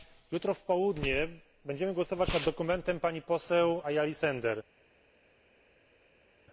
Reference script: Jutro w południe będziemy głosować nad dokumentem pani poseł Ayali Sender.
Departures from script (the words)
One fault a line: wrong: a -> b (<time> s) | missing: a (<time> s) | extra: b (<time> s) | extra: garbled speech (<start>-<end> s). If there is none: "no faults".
no faults